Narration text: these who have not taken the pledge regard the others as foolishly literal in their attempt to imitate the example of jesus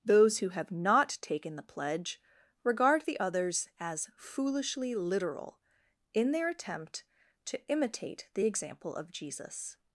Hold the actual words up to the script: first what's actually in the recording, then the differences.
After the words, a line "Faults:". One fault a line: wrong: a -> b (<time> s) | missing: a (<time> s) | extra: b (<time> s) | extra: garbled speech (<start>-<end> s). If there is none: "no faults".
those who have not taken the pledge regard the others as foolishly literal in their attempt to imitate the example of jesus
Faults:
wrong: these -> those (0.0 s)